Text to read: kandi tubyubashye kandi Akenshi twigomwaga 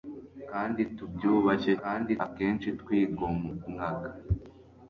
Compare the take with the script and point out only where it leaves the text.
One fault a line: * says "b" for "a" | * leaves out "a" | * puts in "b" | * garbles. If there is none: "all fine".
all fine